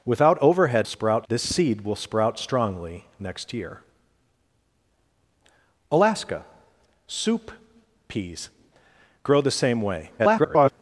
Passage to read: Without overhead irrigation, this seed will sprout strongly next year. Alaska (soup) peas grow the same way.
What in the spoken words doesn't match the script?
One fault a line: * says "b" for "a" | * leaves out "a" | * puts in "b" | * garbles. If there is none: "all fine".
* says "sprout" for "irrigation"
* garbles